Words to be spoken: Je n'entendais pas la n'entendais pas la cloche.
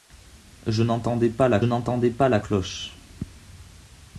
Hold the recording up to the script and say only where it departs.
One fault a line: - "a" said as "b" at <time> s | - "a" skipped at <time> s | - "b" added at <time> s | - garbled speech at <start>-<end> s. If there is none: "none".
none